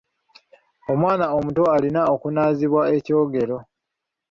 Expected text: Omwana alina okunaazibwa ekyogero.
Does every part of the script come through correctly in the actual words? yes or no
no